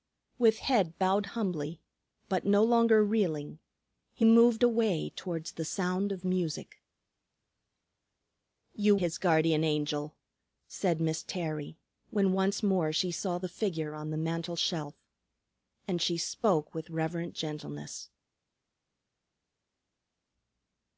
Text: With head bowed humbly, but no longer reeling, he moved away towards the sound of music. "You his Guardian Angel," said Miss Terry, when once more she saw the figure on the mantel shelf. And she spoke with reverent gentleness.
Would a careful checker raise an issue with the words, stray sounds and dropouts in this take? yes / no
no